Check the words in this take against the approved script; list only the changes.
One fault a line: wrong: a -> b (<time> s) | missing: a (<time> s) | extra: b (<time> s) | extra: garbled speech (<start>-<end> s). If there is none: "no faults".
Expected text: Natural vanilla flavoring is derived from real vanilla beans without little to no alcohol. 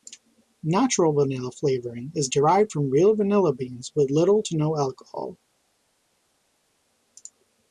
wrong: without -> with (4.0 s)